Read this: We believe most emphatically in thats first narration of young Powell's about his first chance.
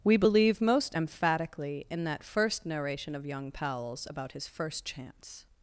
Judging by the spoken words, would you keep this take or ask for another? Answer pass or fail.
fail